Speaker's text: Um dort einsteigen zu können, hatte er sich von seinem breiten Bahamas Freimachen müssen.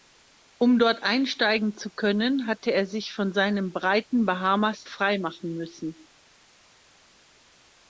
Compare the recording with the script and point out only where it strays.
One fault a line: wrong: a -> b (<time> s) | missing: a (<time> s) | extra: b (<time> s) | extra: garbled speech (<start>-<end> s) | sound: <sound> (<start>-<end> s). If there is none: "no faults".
no faults